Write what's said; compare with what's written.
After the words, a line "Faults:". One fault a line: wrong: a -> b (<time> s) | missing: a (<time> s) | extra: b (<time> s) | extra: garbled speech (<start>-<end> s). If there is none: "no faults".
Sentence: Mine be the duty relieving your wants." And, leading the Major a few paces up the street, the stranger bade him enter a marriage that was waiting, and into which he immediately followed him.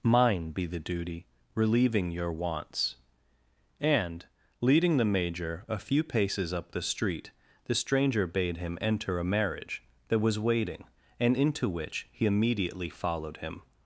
Mine be the duty relieving your wants." And, leading the Major a few paces up the street, the stranger bade him enter a marriage that was waiting, and into which he immediately followed him.
Faults:
no faults